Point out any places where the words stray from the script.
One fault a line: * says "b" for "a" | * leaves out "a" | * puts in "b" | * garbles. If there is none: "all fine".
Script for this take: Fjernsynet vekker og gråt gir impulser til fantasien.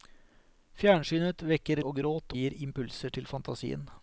all fine